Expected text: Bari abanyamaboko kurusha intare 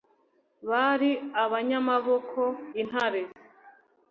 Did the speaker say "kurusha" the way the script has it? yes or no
no